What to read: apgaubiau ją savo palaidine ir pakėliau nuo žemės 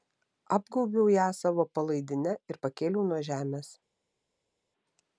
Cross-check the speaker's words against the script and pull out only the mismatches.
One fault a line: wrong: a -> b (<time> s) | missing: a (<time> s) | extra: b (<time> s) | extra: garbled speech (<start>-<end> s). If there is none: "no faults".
no faults